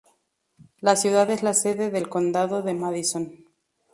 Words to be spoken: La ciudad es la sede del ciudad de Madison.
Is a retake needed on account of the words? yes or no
yes